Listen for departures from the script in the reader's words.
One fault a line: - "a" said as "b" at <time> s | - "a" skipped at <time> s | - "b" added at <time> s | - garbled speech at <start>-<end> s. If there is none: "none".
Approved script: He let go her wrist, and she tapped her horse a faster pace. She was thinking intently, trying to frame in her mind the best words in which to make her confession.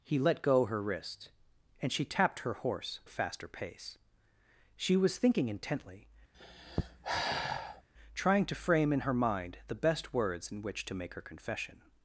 none